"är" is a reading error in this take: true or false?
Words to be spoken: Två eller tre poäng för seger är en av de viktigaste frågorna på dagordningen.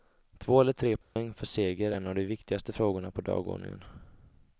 true